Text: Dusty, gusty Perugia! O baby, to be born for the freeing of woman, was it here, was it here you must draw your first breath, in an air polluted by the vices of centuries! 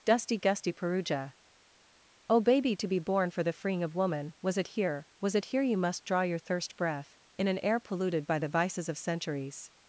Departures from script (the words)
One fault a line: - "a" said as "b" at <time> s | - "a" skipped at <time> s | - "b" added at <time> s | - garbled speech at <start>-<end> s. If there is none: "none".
- "first" said as "thirst" at 6.4 s